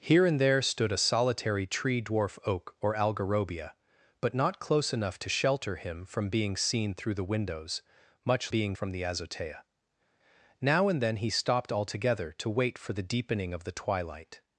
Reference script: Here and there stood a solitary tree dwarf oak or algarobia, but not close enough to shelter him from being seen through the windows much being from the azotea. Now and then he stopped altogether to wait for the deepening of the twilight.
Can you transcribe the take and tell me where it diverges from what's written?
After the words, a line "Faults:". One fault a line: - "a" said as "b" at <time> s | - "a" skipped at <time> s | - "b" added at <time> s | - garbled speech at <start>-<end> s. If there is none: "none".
Here and there stood a solitary tree dwarf oak or algarobia, but not close enough to shelter him from being seen through the windows much being from the azotea. Now and then he stopped altogether to wait for the deepening of the twilight.
Faults:
none